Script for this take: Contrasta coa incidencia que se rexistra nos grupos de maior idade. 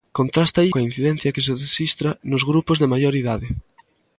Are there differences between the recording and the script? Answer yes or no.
no